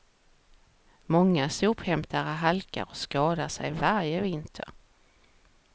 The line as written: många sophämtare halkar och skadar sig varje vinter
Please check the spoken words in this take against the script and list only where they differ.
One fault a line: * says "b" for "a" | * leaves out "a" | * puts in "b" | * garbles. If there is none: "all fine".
all fine